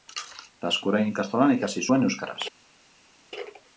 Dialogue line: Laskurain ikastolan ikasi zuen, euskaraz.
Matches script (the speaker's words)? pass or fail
pass